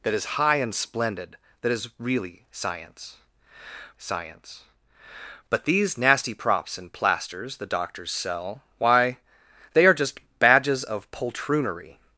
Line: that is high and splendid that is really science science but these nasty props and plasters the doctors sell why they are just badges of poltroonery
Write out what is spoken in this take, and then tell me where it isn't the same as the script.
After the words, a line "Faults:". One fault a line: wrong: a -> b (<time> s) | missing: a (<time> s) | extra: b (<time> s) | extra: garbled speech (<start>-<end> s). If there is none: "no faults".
that is high and splendid that is really science science but these nasty props and plasters the doctors sell why they are just badges of poltroonery
Faults:
no faults